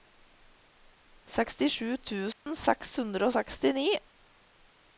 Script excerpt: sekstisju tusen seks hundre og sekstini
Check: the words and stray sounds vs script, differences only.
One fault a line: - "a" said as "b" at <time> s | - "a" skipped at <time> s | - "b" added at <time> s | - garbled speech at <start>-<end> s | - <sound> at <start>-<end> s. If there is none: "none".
- dropout at 2.3-2.5 s